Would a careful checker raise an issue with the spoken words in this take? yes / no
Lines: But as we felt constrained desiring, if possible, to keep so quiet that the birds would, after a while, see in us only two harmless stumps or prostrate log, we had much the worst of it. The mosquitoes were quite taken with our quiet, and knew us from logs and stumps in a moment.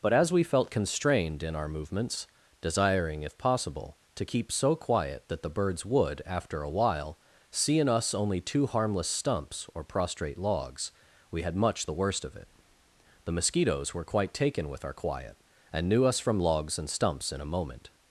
yes